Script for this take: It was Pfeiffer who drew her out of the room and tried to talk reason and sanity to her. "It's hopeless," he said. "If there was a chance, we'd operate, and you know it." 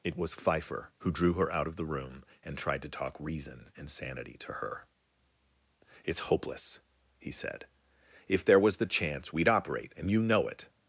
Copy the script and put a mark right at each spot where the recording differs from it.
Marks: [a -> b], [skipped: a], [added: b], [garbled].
It was Pfeiffer who drew her out of the room and tried to talk reason and sanity to her. "It's hopeless," he said. "If there was [a -> the] chance, we'd operate, and you know it."